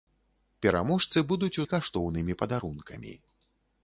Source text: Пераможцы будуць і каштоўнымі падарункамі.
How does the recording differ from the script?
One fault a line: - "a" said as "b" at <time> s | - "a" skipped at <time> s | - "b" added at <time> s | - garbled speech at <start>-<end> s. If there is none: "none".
none